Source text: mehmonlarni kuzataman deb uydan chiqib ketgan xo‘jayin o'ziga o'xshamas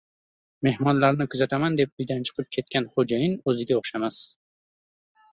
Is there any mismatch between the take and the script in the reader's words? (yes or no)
no